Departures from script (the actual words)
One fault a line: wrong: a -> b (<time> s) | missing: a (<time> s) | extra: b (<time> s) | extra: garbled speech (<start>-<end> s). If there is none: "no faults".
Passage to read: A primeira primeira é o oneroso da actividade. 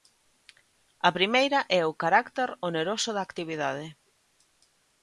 missing: primeira (1.6 s)
extra: carácter (2.0 s)